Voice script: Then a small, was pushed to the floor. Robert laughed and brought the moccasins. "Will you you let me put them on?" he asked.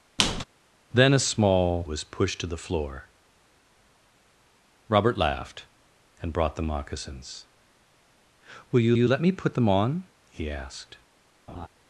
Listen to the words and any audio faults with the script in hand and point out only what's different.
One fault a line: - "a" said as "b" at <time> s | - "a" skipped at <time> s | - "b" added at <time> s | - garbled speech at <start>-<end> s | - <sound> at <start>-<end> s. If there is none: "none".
- squeak at 0.2-0.4 s
- laugh at 11.5-11.7 s